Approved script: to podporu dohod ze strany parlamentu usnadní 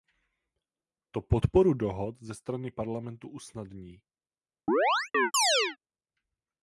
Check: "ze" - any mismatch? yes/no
no